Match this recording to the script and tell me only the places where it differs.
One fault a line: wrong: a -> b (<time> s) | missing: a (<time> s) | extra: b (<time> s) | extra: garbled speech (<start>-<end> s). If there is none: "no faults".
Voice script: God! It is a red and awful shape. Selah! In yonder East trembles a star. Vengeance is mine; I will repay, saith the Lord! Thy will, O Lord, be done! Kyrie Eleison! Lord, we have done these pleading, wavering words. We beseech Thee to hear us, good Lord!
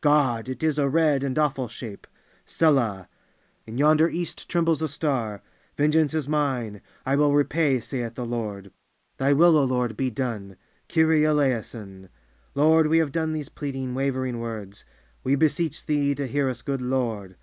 no faults